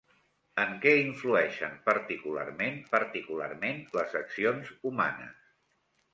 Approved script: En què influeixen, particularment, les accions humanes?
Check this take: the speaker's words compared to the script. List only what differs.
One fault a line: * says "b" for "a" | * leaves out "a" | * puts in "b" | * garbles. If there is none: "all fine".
* puts in "particularment"